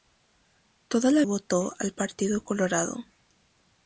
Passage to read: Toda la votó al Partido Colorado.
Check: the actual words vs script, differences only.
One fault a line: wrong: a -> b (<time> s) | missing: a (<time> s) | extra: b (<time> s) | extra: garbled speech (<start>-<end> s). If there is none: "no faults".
no faults